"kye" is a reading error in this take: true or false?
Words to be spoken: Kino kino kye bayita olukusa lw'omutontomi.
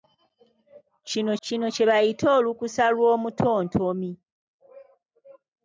false